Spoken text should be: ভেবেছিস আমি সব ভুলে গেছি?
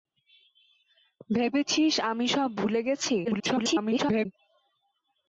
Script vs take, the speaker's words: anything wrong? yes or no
yes